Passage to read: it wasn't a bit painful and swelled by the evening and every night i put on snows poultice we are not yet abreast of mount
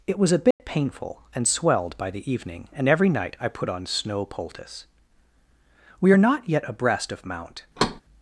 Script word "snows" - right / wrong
wrong